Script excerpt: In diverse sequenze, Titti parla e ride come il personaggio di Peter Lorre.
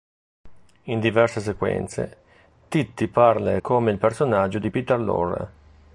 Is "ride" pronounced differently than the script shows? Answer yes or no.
yes